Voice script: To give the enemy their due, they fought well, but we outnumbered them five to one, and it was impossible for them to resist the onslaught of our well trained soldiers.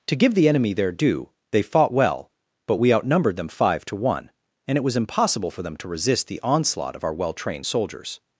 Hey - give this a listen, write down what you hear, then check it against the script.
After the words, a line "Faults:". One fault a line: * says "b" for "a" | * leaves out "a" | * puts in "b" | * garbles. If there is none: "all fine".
To give the enemy their due, they fought well, but we outnumbered them five to one, and it was impossible for them to resist the onslaught of our well trained soldiers.
Faults:
all fine